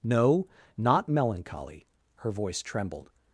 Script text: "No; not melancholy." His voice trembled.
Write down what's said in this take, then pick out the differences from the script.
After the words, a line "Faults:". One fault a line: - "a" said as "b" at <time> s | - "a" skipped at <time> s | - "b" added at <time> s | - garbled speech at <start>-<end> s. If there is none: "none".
"No; not melancholy." Her voice trembled.
Faults:
- "His" said as "Her" at 2.2 s